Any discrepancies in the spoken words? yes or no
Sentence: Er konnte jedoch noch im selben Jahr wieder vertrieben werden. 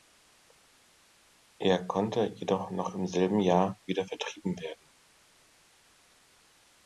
no